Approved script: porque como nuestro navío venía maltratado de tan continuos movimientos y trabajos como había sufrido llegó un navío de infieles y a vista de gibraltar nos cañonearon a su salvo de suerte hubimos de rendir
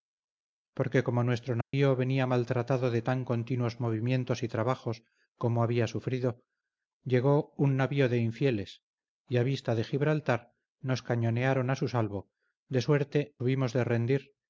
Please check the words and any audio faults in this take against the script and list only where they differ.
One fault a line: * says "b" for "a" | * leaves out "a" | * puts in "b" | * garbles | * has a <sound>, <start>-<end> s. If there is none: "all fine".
* has a dropout, 1.6-1.7 s